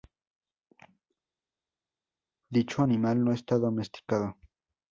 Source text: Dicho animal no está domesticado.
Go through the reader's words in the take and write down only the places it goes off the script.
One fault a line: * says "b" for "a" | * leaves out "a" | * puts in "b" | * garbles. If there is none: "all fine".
all fine